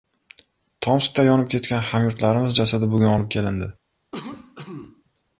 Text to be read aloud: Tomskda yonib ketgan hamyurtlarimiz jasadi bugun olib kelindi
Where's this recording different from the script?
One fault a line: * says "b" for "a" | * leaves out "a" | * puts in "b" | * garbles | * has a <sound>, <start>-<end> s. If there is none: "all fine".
* has a cough, 4.1-5.0 s